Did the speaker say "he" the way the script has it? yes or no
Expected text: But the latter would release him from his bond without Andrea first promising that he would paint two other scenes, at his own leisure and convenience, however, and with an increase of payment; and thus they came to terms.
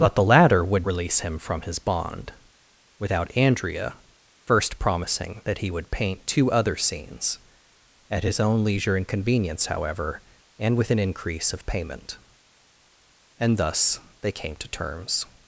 yes